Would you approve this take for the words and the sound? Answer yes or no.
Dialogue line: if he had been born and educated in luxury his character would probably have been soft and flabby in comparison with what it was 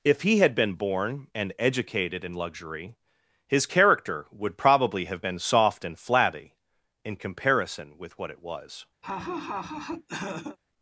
no